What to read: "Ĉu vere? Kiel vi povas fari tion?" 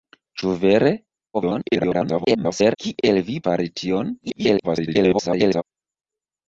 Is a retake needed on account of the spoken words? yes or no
yes